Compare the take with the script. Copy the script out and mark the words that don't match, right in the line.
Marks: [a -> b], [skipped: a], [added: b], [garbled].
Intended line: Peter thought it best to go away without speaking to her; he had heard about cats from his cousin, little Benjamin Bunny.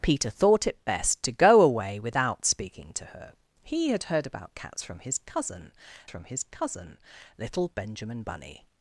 Peter thought it best to go away without speaking to her; he had heard about cats from his cousin, [added: from his cousin] little Benjamin Bunny.